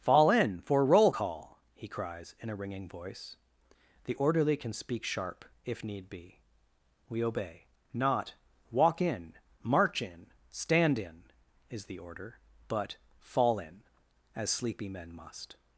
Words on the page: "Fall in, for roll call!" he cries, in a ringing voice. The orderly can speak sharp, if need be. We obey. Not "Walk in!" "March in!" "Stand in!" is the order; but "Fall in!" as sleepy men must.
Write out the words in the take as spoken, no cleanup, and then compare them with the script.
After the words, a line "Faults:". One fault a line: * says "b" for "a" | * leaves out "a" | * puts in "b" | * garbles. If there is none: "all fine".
"Fall in, for roll call!" he cries, in a ringing voice. The orderly can speak sharp, if need be. We obey. Not "Walk in!" "March in!" "Stand in!" is the order; but "Fall in!" as sleepy men must.
Faults:
all fine